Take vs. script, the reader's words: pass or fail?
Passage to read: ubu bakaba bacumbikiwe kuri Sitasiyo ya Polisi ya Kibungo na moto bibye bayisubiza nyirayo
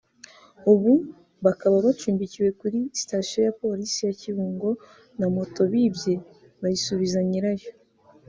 pass